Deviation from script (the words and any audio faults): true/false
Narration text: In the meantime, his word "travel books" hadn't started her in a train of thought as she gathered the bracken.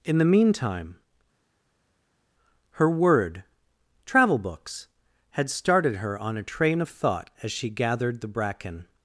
true